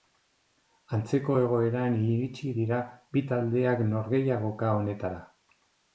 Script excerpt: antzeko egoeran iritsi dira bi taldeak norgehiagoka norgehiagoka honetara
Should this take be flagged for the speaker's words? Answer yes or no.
yes